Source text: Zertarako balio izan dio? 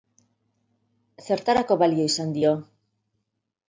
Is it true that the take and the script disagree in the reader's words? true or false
false